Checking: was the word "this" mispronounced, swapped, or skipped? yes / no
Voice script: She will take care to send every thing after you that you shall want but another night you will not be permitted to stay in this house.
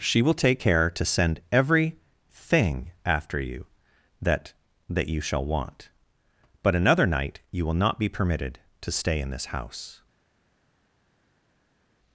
no